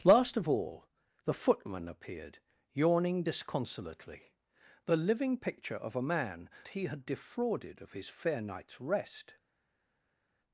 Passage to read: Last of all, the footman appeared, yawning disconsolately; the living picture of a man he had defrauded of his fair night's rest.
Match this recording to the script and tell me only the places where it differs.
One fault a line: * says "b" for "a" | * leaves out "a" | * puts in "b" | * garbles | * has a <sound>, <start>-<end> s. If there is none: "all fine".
all fine